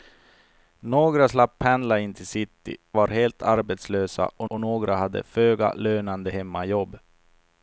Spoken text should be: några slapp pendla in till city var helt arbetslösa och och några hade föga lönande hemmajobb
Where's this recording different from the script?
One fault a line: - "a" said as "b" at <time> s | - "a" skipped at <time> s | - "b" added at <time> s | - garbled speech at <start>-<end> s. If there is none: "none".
none